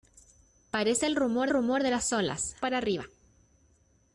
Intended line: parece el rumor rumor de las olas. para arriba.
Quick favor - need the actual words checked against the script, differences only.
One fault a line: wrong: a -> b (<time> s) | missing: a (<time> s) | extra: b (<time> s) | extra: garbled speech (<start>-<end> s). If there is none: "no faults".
no faults